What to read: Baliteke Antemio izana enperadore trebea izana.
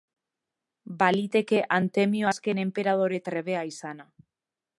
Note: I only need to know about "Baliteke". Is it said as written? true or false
true